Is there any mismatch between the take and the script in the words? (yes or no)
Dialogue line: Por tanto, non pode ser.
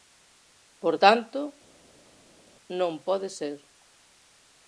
no